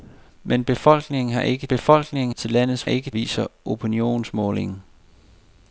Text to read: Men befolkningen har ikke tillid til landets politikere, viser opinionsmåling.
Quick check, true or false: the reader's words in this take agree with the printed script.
false